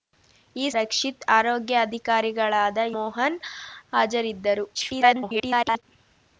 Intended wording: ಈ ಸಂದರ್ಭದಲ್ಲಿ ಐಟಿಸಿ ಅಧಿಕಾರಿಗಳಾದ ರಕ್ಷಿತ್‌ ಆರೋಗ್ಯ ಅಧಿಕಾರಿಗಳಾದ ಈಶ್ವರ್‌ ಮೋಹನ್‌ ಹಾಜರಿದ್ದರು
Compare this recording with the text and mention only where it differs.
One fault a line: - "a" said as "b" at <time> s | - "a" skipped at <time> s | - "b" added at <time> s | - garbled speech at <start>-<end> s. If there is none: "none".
- "ಸಂದರ್ಭದಲ್ಲಿ ಐಟಿಸಿ ಅಧಿಕಾರಿಗಳಾದ" skipped at 0.7 s
- "ಈಶ್ವರ್" skipped at 2.8 s
- garbled speech at 4.7-5.8 s